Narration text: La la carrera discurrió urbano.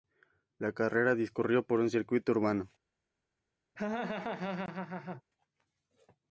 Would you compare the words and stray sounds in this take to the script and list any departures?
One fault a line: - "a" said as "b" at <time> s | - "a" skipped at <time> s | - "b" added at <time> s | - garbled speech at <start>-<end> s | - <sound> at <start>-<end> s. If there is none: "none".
- "la" skipped at 0.7 s
- "por un circuito" added at 1.6 s
- laugh at 3.8-5.2 s